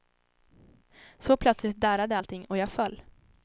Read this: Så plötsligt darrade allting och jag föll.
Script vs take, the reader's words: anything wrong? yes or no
no